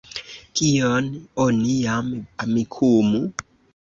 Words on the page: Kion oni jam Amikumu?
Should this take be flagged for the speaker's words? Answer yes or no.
no